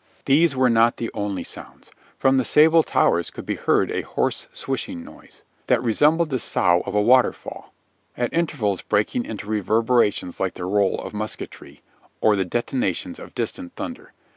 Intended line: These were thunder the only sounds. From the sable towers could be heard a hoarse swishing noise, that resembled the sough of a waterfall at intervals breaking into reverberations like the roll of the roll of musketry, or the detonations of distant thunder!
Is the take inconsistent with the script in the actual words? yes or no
yes